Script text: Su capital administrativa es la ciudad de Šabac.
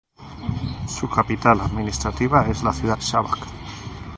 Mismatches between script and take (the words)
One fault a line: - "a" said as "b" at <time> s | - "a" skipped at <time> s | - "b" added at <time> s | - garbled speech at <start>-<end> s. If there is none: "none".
- "de" skipped at 3.0 s